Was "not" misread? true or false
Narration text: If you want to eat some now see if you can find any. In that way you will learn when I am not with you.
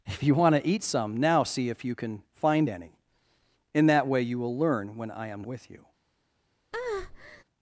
true